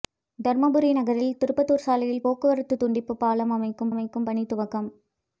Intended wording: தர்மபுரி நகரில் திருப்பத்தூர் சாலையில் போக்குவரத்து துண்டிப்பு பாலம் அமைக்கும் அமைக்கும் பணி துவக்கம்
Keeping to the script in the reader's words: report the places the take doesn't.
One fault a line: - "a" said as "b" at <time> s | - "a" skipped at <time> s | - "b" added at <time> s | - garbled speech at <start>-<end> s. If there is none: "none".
none